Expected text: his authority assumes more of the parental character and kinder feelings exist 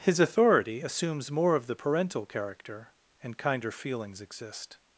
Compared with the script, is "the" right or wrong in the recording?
right